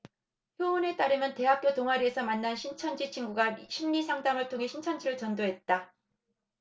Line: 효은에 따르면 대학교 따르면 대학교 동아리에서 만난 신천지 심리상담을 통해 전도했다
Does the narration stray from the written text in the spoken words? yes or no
yes